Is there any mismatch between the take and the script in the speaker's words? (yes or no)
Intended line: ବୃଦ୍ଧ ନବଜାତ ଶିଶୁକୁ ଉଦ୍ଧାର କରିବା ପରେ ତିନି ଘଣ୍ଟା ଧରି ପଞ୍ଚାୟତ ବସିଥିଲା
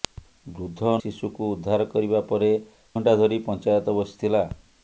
yes